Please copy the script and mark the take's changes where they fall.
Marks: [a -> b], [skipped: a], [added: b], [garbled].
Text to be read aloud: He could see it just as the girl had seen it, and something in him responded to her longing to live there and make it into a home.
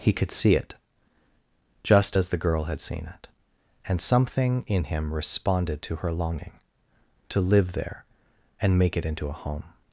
He could see it just as the girl had seen it, and something in him responded to her longing to live there and make it into a home.